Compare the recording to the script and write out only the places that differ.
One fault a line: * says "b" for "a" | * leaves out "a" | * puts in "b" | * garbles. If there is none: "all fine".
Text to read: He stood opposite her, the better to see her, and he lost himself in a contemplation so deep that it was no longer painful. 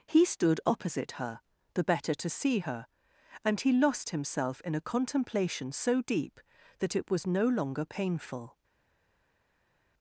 all fine